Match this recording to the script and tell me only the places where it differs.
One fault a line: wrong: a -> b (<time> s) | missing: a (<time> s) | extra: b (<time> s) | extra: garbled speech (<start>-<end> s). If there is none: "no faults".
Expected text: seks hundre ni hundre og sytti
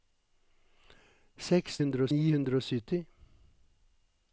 no faults